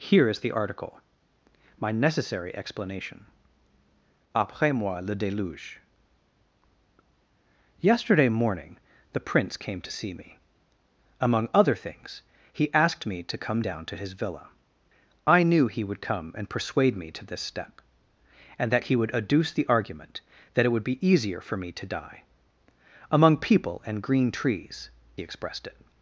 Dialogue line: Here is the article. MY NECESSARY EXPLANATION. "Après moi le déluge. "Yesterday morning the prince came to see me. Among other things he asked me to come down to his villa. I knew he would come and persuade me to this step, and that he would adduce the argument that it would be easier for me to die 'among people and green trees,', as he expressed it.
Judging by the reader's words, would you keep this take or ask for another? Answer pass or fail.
fail